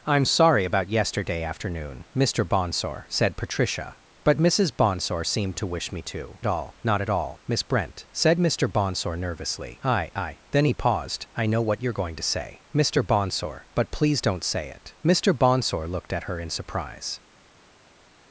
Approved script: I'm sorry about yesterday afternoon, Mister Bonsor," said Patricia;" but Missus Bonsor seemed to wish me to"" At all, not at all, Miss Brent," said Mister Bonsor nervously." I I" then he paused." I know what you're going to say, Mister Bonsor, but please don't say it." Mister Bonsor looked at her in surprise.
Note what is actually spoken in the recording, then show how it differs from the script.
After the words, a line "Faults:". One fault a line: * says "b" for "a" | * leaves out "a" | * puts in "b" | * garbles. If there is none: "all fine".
I'm sorry about yesterday afternoon, Mister Bonsor," said Patricia;" but Missus Bonsor seemed to wish me to"" At all, not at all, Miss Brent," said Mister Bonsor nervously." I I" then he paused." I know what you're going to say, Mister Bonsor, but please don't say it." Mister Bonsor looked at her in surprise.
Faults:
all fine